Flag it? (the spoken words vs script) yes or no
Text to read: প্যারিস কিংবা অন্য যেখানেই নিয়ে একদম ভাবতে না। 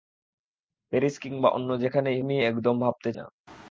no